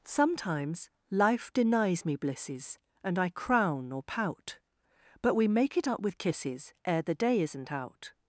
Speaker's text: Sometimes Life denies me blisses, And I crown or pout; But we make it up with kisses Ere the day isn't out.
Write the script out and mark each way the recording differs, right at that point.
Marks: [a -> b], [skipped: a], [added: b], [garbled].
Sometimes Life denies me blisses, And I crown or pout; But we make it up with kisses Ere the day isn't out.